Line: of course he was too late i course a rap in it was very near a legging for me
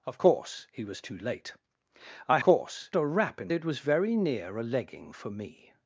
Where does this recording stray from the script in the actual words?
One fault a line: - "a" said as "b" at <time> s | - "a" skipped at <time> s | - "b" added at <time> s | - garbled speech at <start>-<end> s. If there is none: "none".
none